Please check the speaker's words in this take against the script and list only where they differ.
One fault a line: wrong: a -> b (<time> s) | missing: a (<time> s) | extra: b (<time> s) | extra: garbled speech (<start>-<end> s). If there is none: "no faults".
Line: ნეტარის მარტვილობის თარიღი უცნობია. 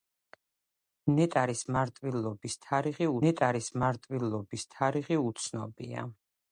extra: ნეტარის მარტვილობის თარიღი (3.2 s)